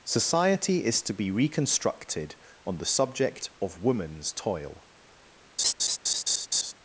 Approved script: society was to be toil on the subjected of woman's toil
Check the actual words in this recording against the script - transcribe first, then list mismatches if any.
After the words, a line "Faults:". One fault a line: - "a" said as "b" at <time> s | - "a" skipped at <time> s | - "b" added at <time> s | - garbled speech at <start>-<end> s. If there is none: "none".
society is to be reconstructed on the subject of woman's toil
Faults:
- "was" said as "is" at 0.8 s
- "toil" said as "reconstructed" at 1.3 s
- "subjected" said as "subject" at 2.9 s